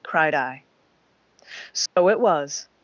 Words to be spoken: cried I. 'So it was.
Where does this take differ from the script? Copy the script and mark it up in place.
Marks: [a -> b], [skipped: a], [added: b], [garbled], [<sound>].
cried I. 'So [dropout] it was.